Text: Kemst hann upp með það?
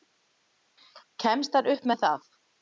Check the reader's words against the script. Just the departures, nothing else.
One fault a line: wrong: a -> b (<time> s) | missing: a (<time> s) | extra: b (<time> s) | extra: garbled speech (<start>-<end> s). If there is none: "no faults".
no faults